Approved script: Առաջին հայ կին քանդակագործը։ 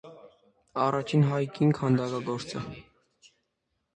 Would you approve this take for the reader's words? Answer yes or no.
yes